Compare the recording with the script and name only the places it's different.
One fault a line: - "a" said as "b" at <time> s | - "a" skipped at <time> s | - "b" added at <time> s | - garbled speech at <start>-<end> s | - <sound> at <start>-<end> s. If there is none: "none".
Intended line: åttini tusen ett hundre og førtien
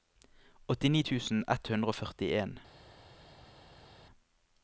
none